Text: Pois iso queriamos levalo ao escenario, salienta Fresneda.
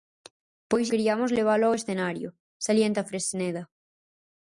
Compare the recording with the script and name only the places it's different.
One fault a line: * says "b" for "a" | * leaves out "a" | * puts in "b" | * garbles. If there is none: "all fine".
* leaves out "iso"